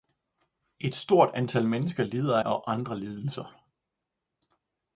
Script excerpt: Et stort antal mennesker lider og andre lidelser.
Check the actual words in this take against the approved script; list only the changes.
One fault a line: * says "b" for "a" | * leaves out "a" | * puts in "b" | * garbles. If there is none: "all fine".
all fine